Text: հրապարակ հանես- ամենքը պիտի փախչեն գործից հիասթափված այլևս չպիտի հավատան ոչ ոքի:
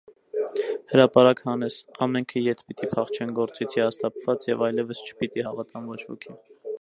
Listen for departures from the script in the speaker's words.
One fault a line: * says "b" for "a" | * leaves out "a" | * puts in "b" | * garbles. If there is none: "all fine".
* puts in "ետ"
* puts in "և"